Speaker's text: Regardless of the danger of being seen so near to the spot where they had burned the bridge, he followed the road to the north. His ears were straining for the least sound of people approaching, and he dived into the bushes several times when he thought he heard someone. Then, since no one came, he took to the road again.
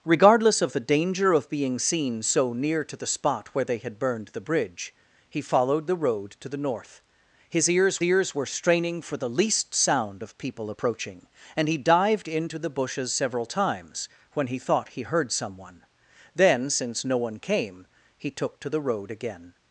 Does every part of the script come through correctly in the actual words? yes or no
no